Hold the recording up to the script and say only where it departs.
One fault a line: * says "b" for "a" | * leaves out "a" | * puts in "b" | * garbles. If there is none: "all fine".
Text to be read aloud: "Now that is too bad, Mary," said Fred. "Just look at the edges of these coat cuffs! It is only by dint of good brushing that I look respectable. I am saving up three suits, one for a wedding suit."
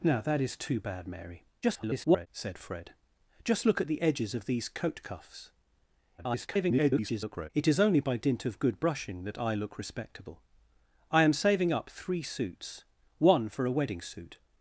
* garbles
* garbles